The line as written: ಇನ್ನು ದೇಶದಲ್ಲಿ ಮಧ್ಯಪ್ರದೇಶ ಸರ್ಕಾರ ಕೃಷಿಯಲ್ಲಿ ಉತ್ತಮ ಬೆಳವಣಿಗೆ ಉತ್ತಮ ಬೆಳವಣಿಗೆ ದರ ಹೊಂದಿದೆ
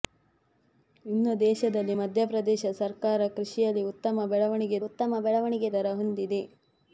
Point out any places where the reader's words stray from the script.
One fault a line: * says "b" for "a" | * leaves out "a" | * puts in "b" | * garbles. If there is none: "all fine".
all fine